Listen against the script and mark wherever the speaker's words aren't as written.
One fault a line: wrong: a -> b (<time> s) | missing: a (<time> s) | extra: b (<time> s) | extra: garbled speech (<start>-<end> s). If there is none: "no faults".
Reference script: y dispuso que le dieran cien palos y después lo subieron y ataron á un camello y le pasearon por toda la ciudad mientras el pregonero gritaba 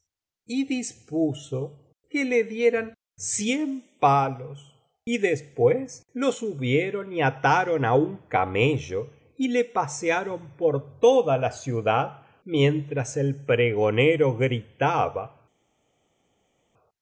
no faults